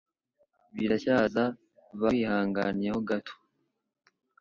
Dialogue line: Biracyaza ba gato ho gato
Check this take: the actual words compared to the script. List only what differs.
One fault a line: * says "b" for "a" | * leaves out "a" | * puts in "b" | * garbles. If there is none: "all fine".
* says "wihanganye" for "gato"